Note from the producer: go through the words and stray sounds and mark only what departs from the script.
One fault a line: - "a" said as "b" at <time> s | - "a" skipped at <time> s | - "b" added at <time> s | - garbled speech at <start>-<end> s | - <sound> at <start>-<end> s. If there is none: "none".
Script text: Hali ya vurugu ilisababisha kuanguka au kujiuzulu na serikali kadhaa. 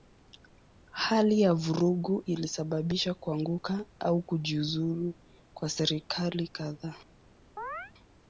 - "na" said as "kwa" at 5.5 s
- chirp at 7.6-7.9 s